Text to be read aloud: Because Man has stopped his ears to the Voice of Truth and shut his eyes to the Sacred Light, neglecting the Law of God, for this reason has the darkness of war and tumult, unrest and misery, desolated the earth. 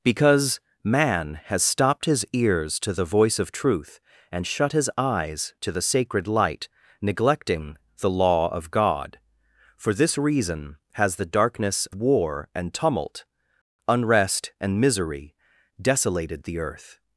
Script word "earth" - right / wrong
right